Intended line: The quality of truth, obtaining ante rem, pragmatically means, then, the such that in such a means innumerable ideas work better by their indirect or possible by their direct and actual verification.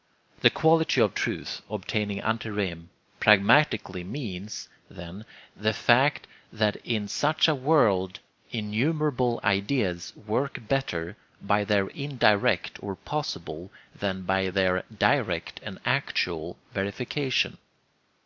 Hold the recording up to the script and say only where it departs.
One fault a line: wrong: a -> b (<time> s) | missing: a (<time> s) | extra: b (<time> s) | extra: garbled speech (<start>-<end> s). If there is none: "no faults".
wrong: such -> fact (5.7 s)
wrong: means -> world (7.5 s)
extra: than (13.9 s)